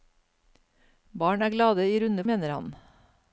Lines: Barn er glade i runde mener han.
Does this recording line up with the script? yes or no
yes